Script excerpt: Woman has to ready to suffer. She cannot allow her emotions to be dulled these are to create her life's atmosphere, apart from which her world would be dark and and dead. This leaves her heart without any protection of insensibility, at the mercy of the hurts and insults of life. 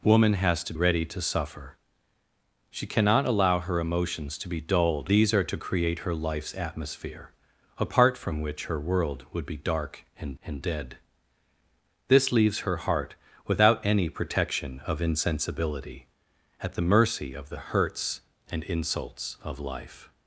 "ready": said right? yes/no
yes